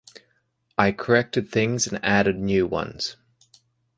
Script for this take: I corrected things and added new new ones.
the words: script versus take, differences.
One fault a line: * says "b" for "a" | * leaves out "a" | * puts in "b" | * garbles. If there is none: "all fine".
* leaves out "new"